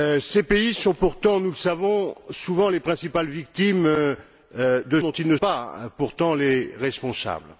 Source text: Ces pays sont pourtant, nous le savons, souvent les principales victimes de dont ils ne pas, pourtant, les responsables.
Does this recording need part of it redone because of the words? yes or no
no